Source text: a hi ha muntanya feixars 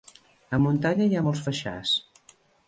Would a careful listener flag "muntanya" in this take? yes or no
yes